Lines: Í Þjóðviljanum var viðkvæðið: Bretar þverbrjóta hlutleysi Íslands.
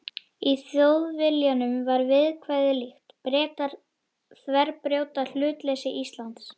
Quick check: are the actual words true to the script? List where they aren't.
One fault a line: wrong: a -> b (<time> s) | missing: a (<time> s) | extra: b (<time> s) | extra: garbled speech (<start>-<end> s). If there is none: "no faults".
extra: líkt (2.8 s)